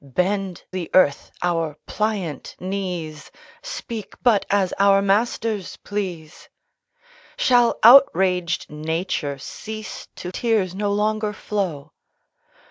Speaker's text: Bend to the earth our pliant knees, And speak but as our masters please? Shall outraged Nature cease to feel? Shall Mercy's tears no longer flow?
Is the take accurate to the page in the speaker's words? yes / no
no